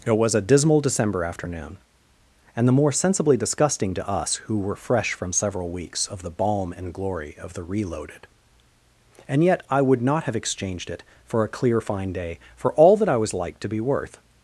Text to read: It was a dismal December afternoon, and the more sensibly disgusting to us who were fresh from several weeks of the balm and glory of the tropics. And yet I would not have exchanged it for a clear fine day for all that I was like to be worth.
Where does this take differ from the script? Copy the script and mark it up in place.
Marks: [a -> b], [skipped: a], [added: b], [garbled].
It was a dismal December afternoon, and the more sensibly disgusting to us who were fresh from several weeks of the balm and glory of the [tropics. -> reloaded] And yet I would not have exchanged it for a clear fine day for all that I was like to be worth.